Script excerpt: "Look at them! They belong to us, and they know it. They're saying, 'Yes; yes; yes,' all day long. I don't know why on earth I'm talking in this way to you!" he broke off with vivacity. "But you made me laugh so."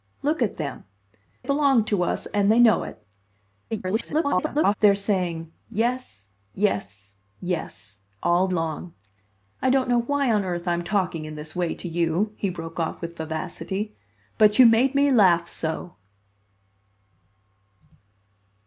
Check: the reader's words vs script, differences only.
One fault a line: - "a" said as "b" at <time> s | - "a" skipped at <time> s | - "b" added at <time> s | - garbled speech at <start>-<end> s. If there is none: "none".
- "They" skipped at 0.8 s
- garbled speech at 3.7-4.7 s
- "day" skipped at 8.5 s